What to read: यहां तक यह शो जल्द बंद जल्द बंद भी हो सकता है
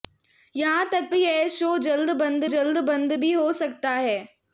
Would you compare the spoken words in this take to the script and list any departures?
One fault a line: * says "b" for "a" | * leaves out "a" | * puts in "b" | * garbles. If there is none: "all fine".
all fine